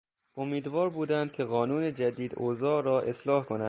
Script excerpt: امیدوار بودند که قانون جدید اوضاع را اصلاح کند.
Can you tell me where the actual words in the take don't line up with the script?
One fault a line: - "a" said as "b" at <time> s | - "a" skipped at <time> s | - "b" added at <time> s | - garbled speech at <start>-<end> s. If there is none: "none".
none